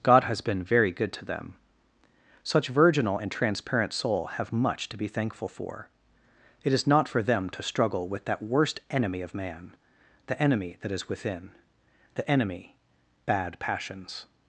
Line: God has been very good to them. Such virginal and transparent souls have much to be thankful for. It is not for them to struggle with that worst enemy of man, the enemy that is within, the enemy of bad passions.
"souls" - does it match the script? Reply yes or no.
no